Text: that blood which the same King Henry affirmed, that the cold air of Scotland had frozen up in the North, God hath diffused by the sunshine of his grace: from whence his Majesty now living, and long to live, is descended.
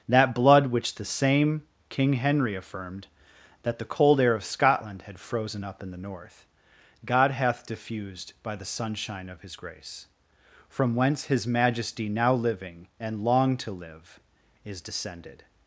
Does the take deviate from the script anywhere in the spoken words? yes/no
no